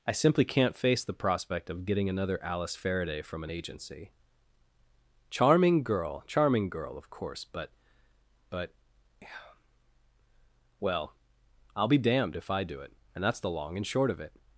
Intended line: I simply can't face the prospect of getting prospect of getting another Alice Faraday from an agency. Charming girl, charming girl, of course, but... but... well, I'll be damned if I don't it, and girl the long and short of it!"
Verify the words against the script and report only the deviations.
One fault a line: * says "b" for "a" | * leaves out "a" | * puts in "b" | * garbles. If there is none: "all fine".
* leaves out "prospect of getting"
* says "do" for "don't"
* says "that's" for "girl"